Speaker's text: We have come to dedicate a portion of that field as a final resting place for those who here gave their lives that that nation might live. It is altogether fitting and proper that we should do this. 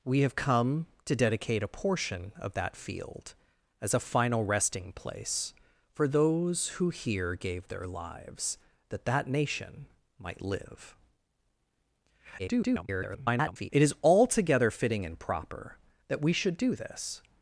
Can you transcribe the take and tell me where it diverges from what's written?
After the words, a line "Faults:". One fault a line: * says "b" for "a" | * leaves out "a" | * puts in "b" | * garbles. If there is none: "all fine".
We have come to dedicate a portion of that field as a final resting place for those who here gave their lives that that nation might live. [garbled] It is altogether fitting and proper that we should do this.
Faults:
* garbles